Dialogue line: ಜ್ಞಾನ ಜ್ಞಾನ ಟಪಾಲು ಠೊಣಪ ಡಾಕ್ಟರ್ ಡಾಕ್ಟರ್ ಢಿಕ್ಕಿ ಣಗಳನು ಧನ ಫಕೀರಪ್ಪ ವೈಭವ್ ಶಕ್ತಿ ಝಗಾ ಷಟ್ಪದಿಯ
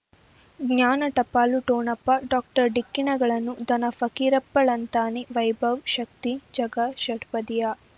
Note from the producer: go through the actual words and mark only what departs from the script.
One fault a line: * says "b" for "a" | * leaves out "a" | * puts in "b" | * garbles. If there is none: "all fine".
* leaves out "ಜ್ಞಾನ"
* leaves out "ಡಾಕ್ಟರ್"
* puts in "ಳಂತಾನೆ"